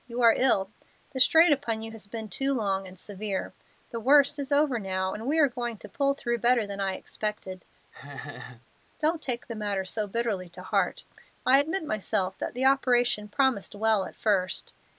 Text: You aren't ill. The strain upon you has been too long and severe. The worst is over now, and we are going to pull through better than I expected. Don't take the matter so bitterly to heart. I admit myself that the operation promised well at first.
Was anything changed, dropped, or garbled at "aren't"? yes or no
yes